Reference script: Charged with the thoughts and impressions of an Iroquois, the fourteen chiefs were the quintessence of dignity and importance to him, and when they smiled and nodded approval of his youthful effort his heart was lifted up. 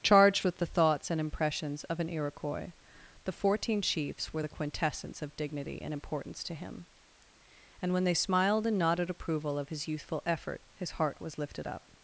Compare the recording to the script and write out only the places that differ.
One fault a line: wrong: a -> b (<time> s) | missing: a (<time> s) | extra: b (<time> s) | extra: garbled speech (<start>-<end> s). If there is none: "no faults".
no faults